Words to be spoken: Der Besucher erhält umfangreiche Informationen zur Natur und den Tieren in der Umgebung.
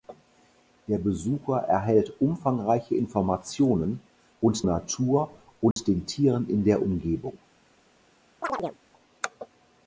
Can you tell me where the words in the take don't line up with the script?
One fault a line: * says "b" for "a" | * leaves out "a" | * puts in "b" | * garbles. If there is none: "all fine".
* says "und" for "zur"